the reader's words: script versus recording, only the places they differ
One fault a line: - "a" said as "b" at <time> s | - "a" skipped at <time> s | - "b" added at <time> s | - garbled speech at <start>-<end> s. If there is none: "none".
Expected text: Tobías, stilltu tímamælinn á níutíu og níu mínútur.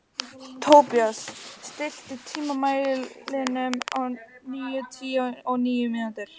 none